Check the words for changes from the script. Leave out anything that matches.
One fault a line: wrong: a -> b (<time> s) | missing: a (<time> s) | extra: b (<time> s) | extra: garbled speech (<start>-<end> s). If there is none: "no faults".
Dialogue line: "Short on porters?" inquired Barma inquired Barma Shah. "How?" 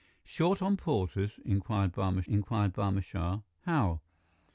no faults